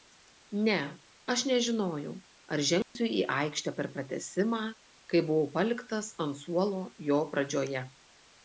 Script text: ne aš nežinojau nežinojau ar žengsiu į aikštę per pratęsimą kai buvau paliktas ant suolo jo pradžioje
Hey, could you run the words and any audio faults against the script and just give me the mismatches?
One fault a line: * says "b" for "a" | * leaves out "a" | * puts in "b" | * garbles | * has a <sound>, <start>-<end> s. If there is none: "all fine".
* leaves out "nežinojau"
* has a dropout, 2.8-3.0 s